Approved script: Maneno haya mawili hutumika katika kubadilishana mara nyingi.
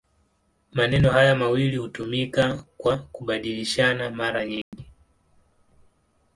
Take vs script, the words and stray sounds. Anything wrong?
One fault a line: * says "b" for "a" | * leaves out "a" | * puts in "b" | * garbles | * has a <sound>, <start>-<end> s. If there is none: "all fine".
* says "kwa" for "katika"
* has a dropout, 4.6-4.7 s